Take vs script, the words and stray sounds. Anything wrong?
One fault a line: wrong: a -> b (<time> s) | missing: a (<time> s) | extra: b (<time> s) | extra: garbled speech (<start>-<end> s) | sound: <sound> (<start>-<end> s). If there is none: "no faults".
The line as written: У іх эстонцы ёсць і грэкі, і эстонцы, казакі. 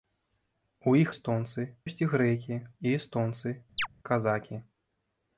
sound: chirp (3.8-3.9 s)